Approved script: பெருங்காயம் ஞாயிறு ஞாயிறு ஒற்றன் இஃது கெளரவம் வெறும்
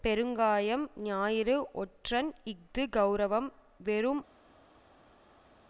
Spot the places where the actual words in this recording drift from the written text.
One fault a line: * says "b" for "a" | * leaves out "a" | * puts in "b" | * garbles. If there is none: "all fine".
* leaves out "ஞாயிறு"